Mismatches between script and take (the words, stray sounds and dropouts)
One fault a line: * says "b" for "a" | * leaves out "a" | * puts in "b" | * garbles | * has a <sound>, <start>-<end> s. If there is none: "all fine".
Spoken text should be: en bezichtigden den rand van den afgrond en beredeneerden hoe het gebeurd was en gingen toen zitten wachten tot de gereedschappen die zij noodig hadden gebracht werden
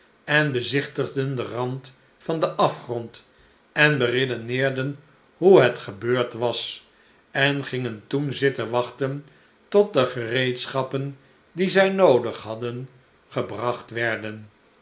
all fine